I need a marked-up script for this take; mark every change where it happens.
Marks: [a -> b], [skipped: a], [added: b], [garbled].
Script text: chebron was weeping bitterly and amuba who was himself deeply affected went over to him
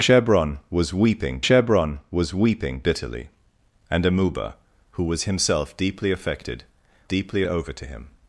chebron was weeping [added: chebron was weeping] bitterly and amuba who was himself deeply affected [went -> deeply] over to him